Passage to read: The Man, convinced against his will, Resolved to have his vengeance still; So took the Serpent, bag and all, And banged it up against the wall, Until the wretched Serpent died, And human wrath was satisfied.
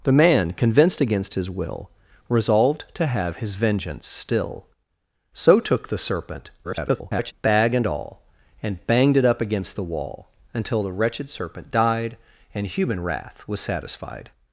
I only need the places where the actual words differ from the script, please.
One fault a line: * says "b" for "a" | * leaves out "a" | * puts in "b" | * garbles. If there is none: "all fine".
* garbles